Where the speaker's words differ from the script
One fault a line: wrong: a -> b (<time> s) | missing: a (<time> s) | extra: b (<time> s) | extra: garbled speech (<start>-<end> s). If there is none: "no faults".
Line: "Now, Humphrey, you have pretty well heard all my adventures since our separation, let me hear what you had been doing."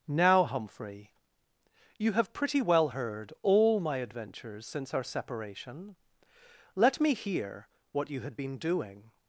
no faults